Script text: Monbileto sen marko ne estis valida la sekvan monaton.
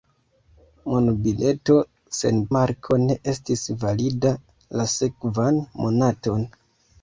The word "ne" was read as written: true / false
true